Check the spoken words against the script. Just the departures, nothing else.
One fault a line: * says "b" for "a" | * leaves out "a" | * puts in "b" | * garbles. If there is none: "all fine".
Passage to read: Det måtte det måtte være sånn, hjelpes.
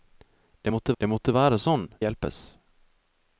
all fine